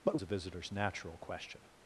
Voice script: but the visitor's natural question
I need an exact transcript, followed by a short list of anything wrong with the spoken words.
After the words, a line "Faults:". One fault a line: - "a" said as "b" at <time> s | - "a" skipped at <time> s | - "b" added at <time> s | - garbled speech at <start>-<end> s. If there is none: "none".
but the visitor's natural question
Faults:
none